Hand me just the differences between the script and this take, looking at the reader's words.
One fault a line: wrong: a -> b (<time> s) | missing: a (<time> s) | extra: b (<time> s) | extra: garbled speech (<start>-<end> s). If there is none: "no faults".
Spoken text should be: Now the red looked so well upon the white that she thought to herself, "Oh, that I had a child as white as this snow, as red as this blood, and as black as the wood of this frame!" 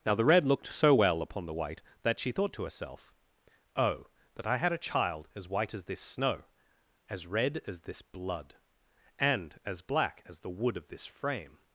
no faults